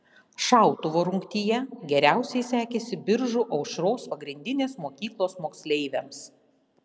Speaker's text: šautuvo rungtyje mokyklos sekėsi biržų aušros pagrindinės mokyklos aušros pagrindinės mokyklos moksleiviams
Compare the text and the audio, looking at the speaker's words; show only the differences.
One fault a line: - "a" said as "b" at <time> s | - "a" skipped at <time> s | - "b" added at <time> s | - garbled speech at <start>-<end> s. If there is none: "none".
- "mokyklos" said as "geriausiai" at 1.9 s
- "aušros pagrindinės mokyklos" skipped at 5.4 s